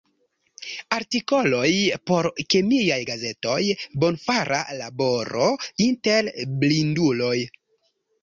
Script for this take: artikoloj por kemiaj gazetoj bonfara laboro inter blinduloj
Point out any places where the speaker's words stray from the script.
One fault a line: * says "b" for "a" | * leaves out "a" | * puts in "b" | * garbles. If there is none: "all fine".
all fine